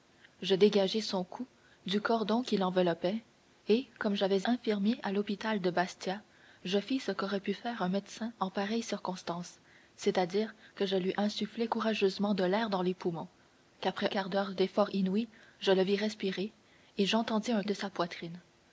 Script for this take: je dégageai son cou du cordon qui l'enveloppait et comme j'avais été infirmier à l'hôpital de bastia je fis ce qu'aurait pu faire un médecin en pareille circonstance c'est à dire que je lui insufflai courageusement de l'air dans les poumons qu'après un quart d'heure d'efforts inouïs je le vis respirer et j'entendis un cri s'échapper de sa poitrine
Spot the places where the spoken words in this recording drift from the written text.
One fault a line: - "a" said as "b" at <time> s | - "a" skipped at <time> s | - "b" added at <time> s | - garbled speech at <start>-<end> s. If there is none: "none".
- "été" skipped at 4.5 s
- "un" skipped at 14.1 s
- "cri s'échapper" skipped at 17.6 s